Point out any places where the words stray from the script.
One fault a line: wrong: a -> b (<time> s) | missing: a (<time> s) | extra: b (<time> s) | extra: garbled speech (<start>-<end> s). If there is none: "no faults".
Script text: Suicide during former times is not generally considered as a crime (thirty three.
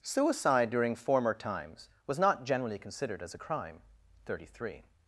wrong: is -> was (2.1 s)